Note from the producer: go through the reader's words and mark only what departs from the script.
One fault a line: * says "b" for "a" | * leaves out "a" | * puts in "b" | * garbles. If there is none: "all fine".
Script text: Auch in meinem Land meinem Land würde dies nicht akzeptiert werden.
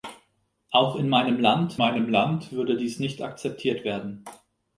all fine